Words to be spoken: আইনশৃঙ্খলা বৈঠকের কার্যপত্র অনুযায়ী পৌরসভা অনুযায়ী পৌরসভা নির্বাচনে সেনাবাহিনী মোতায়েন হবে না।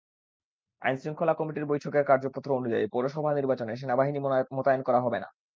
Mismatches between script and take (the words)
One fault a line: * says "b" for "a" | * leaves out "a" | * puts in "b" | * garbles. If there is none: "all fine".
* puts in "কমিটির"
* leaves out "অনুযায়ী পৌরসভা"
* puts in "করা"